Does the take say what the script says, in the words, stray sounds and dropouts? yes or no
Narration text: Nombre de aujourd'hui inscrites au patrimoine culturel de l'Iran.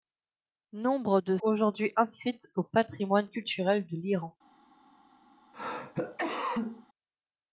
no